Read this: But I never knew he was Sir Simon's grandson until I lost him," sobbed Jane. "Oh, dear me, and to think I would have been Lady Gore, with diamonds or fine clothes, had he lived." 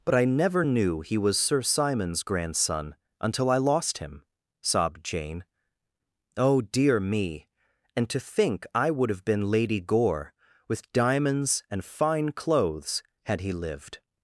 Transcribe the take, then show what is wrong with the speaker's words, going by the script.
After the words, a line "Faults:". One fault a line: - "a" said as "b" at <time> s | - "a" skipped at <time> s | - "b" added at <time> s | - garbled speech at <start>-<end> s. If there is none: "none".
But I never knew he was Sir Simon's grandson until I lost him," sobbed Jane. "Oh, dear me, and to think I would have been Lady Gore, with diamonds and fine clothes, had he lived."
Faults:
- "or" said as "and" at 11.7 s